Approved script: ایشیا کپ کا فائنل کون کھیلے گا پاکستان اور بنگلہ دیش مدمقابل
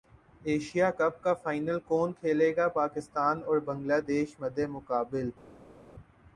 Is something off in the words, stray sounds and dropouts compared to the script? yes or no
no